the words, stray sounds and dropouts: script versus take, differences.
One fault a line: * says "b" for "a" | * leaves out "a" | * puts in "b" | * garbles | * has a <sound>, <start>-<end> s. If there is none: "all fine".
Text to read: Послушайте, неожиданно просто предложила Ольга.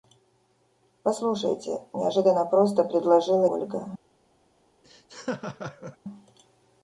* has a laugh, 4.8-6.0 s